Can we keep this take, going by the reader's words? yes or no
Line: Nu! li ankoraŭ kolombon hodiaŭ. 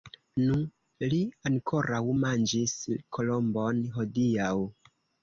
no